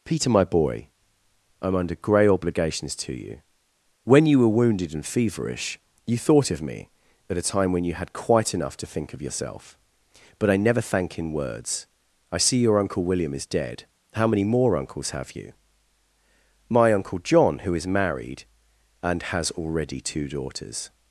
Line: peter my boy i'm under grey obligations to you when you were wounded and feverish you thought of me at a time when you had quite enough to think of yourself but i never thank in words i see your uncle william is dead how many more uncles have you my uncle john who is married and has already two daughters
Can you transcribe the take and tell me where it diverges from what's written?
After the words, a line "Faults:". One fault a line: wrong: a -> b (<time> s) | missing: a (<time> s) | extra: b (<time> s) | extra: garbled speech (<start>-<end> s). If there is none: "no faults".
peter my boy i'm under grey obligations to you when you were wounded and feverish you thought of me at a time when you had quite enough to think of yourself but i never thank in words i see your uncle william is dead how many more uncles have you my uncle john who is married and has already two daughters
Faults:
no faults